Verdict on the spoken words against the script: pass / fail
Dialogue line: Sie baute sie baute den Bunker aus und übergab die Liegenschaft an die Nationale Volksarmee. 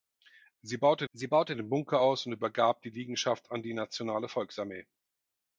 pass